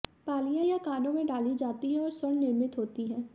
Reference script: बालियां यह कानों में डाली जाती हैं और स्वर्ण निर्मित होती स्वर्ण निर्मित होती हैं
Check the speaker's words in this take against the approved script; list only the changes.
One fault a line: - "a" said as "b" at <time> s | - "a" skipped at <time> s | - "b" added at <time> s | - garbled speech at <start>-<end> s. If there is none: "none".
- "स्वर्ण निर्मित होती" skipped at 3.1 s